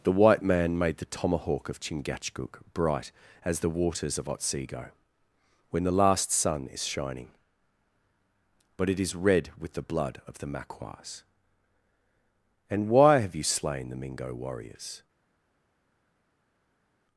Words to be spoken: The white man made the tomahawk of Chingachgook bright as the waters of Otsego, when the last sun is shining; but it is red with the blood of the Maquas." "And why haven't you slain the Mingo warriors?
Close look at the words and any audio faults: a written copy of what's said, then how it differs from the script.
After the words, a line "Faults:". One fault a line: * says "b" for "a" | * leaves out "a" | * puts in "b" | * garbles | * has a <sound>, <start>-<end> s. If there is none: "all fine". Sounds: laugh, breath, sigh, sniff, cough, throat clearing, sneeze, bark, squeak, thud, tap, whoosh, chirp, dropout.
The white man made the tomahawk of Chingachgook bright as the waters of Otsego, when the last sun is shining; but it is red with the blood of the Maquas." "And why have you slain the Mingo warriors?
Faults:
* says "have" for "haven't"